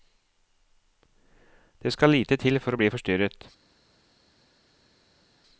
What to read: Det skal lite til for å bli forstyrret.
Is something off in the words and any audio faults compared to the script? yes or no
no